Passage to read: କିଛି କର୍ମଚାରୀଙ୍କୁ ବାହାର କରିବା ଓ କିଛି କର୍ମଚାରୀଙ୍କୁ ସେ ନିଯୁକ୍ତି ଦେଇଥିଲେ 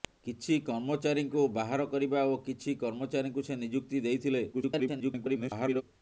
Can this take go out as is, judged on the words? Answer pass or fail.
fail